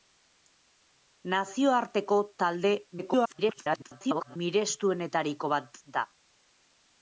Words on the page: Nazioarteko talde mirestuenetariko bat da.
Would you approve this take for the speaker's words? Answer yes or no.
no